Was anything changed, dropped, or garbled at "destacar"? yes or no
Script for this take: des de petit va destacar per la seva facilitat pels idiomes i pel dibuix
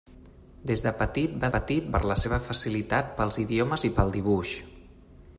yes